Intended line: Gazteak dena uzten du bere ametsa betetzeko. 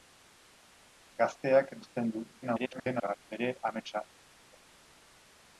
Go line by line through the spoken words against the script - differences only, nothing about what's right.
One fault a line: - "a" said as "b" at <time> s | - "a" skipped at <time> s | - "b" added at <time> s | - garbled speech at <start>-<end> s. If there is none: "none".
- "dena" skipped at 1.8 s
- garbled speech at 2.4-3.3 s